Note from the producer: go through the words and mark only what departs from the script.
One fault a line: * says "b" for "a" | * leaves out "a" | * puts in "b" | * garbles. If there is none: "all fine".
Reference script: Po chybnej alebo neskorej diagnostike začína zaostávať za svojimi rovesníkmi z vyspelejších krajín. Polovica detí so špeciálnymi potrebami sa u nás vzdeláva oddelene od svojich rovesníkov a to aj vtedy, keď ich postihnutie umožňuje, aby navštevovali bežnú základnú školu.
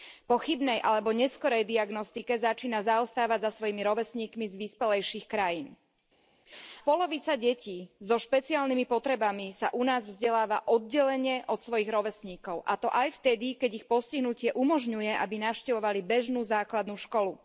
all fine